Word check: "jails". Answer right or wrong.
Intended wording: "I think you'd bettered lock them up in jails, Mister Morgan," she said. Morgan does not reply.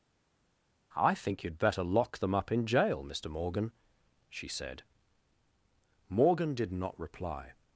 wrong